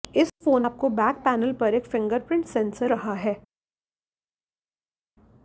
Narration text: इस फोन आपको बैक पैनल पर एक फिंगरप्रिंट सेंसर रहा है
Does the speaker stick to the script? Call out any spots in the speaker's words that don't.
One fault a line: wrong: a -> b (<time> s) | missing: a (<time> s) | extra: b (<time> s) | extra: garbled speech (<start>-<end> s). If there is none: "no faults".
no faults